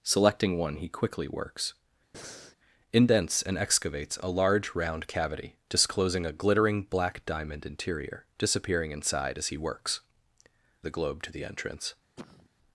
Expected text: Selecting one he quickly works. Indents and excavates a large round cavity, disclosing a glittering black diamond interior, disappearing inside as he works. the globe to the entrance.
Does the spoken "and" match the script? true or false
true